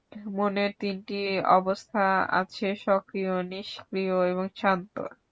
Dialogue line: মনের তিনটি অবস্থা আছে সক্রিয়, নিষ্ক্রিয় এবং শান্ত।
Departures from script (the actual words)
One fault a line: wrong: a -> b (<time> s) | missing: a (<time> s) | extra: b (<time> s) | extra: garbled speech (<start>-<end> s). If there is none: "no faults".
no faults